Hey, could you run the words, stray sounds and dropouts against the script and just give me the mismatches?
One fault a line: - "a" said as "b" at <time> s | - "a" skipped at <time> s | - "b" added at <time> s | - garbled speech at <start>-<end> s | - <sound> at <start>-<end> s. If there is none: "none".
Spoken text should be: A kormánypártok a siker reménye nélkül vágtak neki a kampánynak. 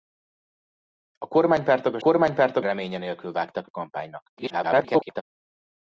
- "siker" said as "kormánypártok" at 2.0 s
- "neki" skipped at 3.7 s
- garbled speech at 4.4-5.2 s